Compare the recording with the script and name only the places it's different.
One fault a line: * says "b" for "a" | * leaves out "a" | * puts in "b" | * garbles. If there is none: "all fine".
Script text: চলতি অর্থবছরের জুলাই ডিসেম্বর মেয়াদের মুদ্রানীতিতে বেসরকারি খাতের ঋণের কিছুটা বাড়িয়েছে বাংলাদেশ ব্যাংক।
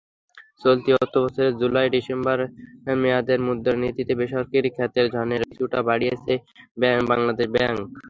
all fine